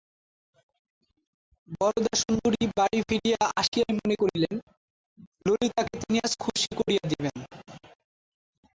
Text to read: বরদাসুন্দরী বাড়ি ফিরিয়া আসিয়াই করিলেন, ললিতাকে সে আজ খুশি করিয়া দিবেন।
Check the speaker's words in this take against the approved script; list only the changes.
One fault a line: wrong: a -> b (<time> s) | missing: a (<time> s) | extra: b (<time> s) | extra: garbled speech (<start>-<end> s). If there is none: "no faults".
extra: মনে (4.0 s)
wrong: সে -> তিনি (6.0 s)